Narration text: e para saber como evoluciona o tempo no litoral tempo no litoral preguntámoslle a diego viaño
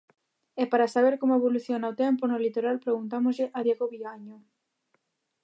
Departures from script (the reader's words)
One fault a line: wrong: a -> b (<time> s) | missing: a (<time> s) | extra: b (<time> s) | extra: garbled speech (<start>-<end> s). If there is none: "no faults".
missing: tempo no litoral (2.8 s)